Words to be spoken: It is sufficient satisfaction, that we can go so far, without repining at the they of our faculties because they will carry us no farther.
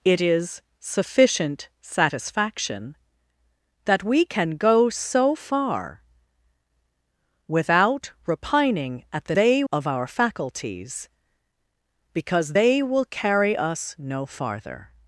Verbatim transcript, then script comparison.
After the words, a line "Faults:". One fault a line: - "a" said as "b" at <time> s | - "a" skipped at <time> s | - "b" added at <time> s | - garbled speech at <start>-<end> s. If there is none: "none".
It is sufficient satisfaction, that we can go so far, without repining at the they of our faculties because they will carry us no farther.
Faults:
none